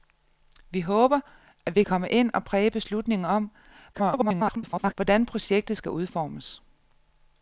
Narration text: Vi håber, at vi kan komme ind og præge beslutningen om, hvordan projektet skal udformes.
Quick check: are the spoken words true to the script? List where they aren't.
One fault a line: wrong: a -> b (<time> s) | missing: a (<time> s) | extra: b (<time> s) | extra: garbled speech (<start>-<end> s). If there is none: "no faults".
missing: kan (1.8 s)
extra: garbled speech (3.9-4.9 s)